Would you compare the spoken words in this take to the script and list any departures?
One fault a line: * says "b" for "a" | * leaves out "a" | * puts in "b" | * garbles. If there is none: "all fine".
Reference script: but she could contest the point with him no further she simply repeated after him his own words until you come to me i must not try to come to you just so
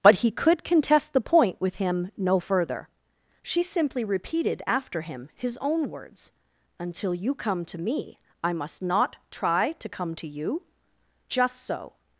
* says "he" for "she"